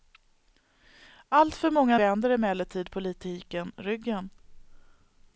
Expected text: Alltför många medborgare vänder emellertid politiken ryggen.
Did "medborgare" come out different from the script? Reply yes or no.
yes